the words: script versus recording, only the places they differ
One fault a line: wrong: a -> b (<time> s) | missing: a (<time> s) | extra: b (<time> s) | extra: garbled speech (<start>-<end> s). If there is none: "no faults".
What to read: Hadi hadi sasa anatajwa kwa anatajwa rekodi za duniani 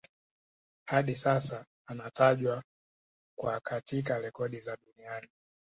missing: hadi (1.1 s)
wrong: anatajwa -> katika (3.6 s)